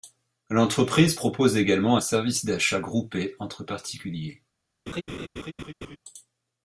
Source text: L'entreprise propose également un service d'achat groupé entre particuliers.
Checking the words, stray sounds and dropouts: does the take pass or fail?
fail